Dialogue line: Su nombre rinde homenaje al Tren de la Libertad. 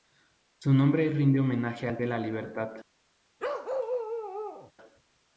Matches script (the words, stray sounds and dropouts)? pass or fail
fail